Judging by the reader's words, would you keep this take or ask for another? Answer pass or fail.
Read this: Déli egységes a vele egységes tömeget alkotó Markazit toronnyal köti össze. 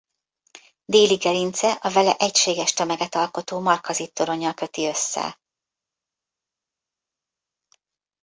fail